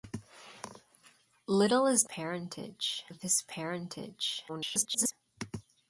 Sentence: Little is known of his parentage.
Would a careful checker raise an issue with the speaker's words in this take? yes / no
yes